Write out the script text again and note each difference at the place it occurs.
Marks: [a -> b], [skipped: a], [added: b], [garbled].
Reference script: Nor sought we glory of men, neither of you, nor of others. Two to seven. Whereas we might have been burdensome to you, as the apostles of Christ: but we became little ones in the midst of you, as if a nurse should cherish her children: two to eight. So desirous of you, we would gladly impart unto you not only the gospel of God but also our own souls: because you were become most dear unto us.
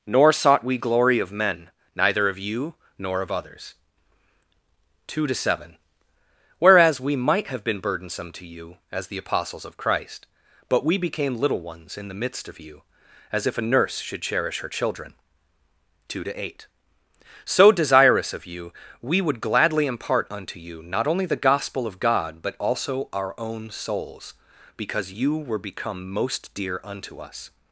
Nor sought we glory of men, neither of you, nor of others. Two to seven. Whereas we might have been burdensome to you, as the apostles of Christ: but we became little ones in the midst of you, as if a nurse should cherish her children: two to eight. So desirous of you, we would gladly impart unto you not only the gospel of God but also our own souls: because you were become most dear unto us.